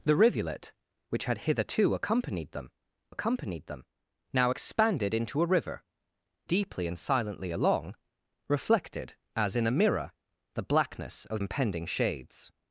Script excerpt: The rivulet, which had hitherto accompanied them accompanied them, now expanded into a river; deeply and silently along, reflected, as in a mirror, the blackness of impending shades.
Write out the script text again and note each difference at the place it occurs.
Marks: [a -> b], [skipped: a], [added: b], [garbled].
The rivulet, which had hitherto accompanied them accompanied them, now expanded into a river; deeply and silently along, reflected, as in a mirror, the blackness of impending shades.